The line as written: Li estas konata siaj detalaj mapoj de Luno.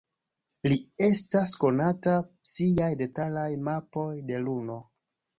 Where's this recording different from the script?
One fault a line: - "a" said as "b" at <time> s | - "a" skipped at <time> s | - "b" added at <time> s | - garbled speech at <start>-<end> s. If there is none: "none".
none